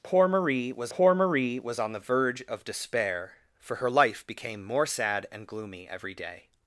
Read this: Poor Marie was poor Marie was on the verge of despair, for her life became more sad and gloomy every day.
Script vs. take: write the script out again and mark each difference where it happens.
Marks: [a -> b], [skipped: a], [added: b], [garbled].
Poor Marie was poor Marie was on the verge of despair, for her life became more sad and gloomy every day.